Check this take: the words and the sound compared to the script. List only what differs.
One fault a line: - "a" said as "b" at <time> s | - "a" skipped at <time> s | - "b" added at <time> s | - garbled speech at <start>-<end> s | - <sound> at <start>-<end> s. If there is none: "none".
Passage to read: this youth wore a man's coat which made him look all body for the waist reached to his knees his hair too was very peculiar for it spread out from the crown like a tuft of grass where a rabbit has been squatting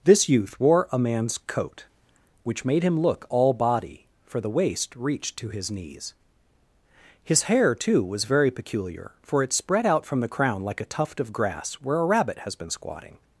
none